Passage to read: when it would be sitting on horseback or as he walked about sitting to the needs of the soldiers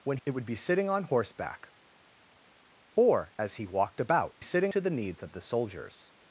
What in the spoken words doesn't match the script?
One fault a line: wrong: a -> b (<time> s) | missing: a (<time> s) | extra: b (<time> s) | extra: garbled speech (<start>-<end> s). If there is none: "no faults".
no faults